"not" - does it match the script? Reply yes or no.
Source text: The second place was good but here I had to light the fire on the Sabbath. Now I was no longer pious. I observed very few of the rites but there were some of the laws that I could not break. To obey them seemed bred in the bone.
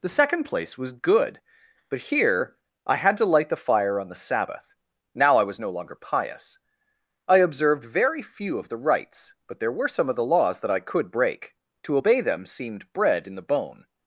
no